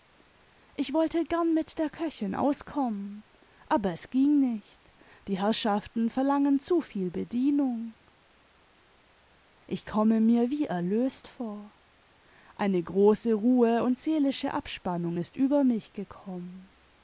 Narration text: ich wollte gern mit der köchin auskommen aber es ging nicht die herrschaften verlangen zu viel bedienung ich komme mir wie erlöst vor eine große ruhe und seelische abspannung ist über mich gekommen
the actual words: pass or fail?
pass